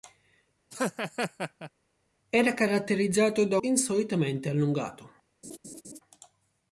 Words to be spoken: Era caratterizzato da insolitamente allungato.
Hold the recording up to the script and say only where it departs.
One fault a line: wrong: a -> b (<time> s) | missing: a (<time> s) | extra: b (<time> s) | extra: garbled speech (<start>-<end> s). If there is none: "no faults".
no faults